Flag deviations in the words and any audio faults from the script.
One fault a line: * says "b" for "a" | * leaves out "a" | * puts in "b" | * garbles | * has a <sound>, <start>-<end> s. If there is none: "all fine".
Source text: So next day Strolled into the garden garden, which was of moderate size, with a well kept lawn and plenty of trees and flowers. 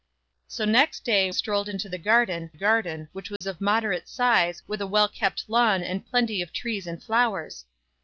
* has a dropout, 3.4-3.4 s